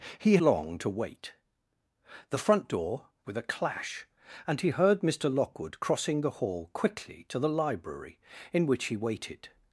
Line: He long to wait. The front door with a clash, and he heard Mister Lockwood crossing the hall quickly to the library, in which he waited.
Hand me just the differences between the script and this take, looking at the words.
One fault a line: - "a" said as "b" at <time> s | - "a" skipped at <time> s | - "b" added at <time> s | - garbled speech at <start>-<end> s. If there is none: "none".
none